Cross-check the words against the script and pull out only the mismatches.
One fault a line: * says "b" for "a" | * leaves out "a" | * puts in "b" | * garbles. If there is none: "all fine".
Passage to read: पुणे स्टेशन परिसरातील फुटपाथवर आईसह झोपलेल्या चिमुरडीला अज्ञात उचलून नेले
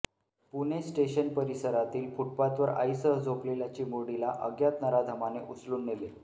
* puts in "नराधमाने"